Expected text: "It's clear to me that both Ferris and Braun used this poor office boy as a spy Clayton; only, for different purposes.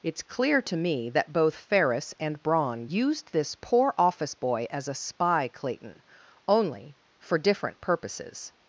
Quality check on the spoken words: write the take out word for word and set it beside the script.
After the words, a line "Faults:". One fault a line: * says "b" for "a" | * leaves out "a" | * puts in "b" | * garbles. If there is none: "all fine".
"It's clear to me that both Ferris and Braun used this poor office boy as a spy Clayton; only, for different purposes.
Faults:
all fine